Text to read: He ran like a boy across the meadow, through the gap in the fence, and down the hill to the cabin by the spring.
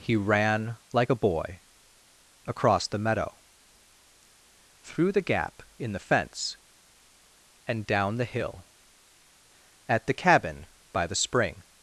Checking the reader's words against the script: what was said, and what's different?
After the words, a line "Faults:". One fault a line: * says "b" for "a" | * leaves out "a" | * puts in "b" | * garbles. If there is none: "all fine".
He ran like a boy across the meadow, through the gap in the fence, and down the hill at the cabin by the spring.
Faults:
* says "at" for "to"